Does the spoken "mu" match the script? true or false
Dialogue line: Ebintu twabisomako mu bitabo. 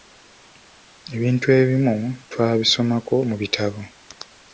true